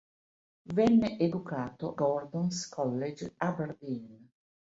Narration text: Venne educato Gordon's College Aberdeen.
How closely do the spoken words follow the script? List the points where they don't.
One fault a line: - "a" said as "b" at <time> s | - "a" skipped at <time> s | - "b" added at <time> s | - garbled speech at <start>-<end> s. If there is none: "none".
none